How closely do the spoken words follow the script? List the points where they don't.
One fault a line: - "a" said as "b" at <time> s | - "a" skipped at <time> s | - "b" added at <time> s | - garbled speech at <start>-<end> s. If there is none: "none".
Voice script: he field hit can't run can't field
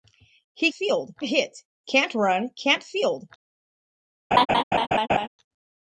none